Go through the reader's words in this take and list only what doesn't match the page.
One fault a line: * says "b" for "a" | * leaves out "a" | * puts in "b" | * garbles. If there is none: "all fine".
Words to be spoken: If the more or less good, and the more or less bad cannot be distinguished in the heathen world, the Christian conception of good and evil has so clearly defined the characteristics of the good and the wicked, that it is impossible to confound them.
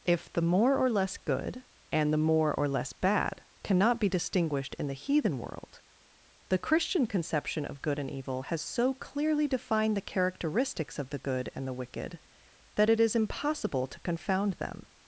all fine